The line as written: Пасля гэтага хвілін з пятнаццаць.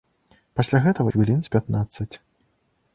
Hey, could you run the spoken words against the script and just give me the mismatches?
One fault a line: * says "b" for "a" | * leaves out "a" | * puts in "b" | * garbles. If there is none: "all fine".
all fine